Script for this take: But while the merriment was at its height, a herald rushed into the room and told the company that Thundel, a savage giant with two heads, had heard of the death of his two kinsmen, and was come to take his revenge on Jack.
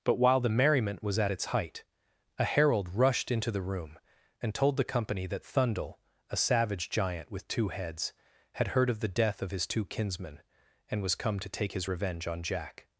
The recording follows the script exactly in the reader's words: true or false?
true